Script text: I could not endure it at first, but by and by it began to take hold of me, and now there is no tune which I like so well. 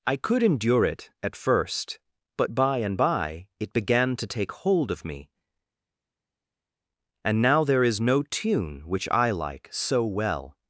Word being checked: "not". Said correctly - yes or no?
no